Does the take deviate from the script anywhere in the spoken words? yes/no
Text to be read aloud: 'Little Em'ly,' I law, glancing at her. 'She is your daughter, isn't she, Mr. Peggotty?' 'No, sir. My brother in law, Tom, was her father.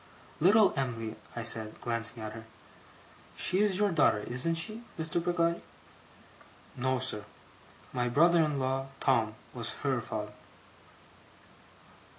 yes